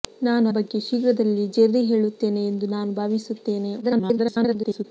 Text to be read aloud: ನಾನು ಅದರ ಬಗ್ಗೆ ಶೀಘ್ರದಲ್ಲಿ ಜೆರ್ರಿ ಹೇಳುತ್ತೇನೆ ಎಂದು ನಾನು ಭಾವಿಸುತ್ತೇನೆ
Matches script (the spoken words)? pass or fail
fail